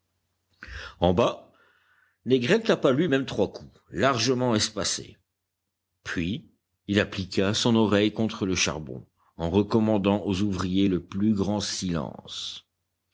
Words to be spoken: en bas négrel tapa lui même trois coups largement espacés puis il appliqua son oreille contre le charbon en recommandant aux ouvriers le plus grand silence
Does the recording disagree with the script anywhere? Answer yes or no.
no